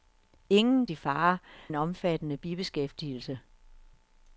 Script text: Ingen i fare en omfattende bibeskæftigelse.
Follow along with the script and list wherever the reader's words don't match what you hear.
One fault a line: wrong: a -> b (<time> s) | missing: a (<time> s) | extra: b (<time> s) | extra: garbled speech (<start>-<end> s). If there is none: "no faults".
no faults